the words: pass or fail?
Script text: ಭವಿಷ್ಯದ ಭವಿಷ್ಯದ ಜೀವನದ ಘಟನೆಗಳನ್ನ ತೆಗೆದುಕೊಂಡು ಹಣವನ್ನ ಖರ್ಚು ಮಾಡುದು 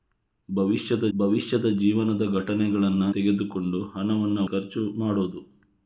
pass